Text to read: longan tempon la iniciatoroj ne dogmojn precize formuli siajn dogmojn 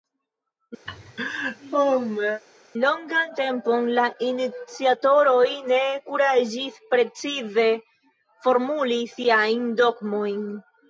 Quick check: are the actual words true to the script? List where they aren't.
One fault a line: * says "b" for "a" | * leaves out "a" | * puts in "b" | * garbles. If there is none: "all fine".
* says "kuraĝis" for "dogmojn"